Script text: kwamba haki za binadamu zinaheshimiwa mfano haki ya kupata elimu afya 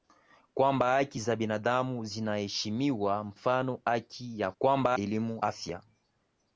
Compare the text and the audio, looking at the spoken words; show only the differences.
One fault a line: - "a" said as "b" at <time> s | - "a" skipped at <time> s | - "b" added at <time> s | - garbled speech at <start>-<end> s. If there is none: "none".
- "kupata" said as "kwamba" at 4.6 s